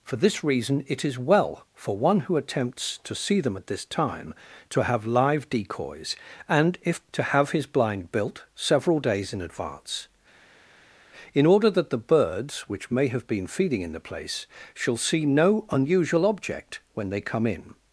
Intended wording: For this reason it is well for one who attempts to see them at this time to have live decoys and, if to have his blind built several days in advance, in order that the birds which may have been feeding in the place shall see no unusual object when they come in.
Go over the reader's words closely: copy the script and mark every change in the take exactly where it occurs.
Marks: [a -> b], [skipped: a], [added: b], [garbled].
For this reason it is well for one who attempts to see them at this time to have live decoys and, if to have his blind built several days in advance, in order that the birds which may have been feeding in the place shall see no unusual object when they come in.